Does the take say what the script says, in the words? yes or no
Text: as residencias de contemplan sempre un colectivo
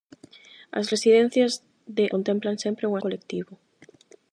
yes